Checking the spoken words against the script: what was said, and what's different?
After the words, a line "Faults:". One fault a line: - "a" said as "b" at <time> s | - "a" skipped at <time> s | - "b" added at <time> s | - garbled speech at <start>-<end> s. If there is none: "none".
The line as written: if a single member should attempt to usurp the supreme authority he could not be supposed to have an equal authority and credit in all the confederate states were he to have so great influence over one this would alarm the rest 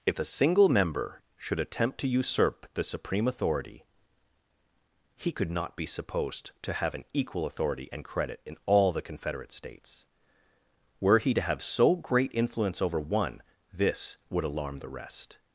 if a single member should attempt to usurp the supreme authority he could not be supposed to have an equal authority and credit in all the confederate states were he to have so great influence over one this would alarm the rest
Faults:
none